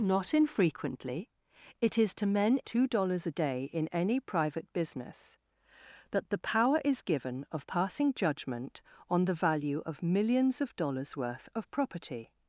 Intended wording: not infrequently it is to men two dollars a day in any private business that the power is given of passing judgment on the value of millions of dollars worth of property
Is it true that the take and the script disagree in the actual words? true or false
false